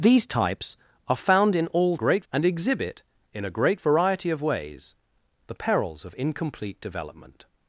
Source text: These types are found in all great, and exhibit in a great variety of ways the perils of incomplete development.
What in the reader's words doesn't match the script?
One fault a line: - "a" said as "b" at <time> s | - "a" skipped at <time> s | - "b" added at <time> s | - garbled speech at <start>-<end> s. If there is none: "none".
none